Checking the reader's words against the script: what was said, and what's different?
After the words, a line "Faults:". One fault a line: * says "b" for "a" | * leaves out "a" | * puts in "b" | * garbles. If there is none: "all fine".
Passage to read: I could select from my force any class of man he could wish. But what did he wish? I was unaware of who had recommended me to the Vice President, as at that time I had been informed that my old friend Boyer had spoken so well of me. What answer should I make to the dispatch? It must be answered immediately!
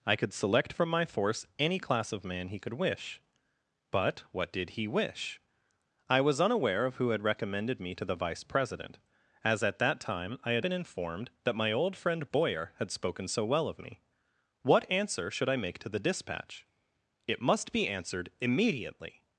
I could select from my force any class of man he could wish. But what did he wish? I was unaware of who had recommended me to the Vice President, as at that time I had been informed that my old friend Boyer had spoken so well of me. What answer should I make to the dispatch? It must be answered immediately!
Faults:
all fine